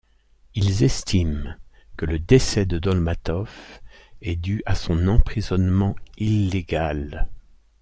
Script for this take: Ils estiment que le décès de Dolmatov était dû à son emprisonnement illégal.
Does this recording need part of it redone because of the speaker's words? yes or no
yes